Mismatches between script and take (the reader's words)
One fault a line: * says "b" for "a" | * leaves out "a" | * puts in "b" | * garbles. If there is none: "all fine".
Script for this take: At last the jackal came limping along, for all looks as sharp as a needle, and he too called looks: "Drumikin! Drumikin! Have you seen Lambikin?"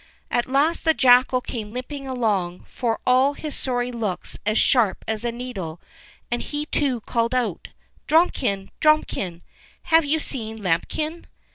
* puts in "his sorry"
* says "out" for "looks"